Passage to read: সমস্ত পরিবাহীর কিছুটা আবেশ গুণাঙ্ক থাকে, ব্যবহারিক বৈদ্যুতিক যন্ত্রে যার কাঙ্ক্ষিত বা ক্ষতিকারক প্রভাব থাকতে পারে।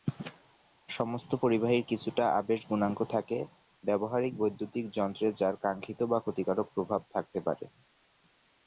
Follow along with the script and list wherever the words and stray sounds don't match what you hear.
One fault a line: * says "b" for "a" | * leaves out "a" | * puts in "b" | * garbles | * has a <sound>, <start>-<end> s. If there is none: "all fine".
all fine